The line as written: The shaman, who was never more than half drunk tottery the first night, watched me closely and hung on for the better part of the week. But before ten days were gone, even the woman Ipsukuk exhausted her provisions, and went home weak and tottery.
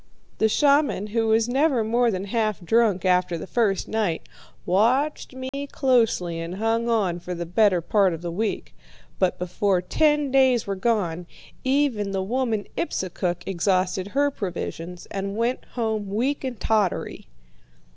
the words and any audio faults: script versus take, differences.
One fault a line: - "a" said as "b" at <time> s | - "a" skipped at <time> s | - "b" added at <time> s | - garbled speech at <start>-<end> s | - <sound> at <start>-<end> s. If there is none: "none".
- "tottery" said as "after" at 3.0 s
- dropout at 5.5-5.5 s